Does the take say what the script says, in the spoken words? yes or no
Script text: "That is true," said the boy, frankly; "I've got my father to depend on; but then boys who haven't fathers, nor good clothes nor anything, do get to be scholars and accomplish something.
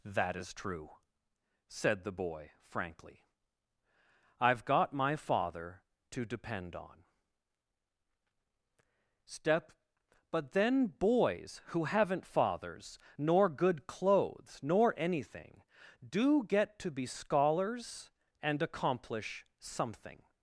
no